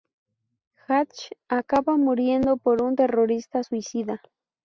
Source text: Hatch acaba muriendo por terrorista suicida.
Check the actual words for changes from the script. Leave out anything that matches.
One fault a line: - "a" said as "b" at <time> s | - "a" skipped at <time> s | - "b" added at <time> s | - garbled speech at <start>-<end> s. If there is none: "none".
- "un" added at 2.8 s